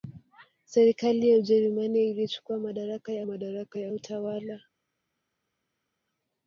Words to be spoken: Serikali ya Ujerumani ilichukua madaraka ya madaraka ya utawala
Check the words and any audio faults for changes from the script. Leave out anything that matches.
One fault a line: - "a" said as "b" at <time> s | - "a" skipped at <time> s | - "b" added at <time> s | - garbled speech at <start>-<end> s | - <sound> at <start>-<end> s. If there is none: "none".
none